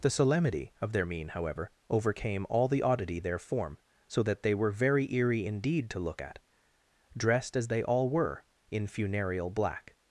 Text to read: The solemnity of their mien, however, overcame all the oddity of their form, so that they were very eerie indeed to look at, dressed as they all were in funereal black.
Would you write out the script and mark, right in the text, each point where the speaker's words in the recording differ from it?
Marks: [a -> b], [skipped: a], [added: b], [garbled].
The solemnity of their mien, however, overcame all the oddity [skipped: of] their form, so that they were very eerie indeed to look at, dressed as they all were in funereal black.